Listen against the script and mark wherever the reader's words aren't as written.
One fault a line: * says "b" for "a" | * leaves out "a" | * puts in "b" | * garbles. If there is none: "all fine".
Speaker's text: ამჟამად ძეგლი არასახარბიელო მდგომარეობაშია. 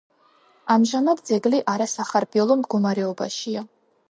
all fine